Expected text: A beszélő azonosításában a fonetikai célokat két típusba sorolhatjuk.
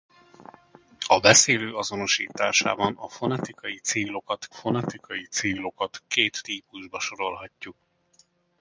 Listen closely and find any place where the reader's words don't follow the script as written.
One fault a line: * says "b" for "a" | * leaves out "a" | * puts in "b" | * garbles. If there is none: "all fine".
* puts in "fonetikai célokat"